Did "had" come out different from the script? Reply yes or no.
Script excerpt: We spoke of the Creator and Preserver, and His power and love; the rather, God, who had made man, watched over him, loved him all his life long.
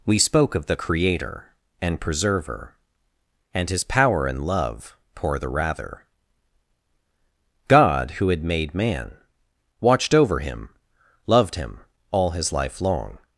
no